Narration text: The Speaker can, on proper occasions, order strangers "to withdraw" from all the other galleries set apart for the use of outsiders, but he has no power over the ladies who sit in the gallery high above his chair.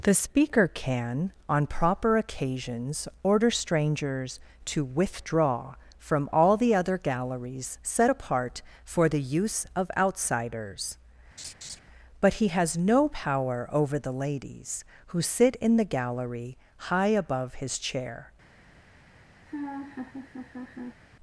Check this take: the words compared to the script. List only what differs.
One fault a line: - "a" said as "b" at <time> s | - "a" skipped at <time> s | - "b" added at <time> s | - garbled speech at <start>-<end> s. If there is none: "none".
none